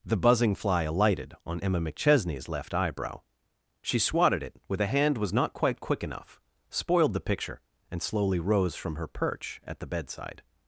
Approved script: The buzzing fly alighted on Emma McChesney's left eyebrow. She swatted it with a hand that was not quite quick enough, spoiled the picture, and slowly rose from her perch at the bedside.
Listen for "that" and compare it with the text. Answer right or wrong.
wrong